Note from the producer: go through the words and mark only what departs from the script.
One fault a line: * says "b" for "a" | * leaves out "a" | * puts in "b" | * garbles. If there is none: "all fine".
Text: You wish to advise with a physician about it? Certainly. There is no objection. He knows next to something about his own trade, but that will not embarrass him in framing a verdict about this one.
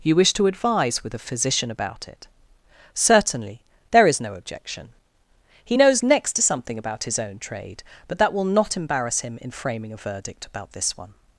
all fine